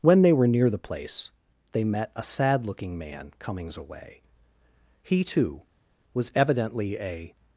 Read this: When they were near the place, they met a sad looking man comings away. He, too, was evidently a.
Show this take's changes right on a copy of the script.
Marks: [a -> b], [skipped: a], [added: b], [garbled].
When they were near the place, they met a sad looking man comings away. He, too, was evidently a.